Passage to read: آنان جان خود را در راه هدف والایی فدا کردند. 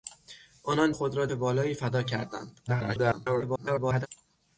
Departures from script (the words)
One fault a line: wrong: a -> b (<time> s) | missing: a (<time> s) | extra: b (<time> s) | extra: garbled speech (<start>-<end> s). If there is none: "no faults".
missing: جان (0.9 s)
missing: در راه هدف (1.3 s)
extra: garbled speech (2.7-4.1 s)